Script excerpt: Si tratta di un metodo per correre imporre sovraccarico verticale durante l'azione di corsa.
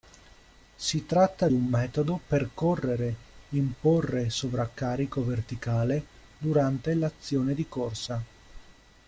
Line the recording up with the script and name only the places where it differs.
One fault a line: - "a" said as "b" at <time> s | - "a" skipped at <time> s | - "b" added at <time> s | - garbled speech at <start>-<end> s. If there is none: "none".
- "di" skipped at 1.5 s